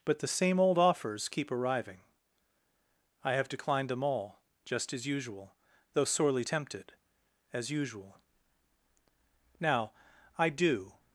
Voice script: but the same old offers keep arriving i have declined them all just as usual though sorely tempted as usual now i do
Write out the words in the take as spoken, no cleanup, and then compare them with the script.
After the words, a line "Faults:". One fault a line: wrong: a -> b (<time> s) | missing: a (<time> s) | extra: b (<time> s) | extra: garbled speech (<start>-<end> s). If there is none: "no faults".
but the same old offers keep arriving i have declined them all just as usual though sorely tempted as usual now i do
Faults:
no faults